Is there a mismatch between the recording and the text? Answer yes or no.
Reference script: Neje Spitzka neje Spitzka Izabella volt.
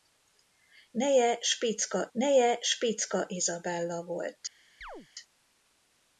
no